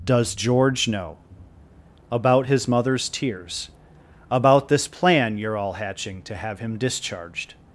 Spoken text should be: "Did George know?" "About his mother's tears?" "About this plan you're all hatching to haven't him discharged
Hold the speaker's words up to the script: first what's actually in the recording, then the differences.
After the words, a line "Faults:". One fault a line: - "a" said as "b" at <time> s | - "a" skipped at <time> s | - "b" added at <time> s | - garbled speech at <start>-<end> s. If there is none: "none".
"Does George know?" "About his mother's tears?" "About this plan you're all hatching to have him discharged
Faults:
- "Did" said as "Does" at 0.0 s
- "haven't" said as "have" at 6.4 s